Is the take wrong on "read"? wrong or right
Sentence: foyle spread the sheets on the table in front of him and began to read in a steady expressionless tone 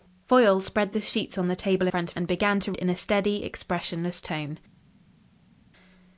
wrong